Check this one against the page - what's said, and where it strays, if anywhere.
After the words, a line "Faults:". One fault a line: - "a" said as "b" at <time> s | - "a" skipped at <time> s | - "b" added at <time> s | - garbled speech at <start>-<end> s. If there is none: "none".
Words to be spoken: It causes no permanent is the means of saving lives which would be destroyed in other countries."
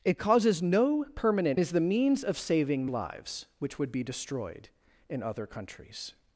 It causes no permanent is the means of saving lives which would be destroyed in other countries."
Faults:
none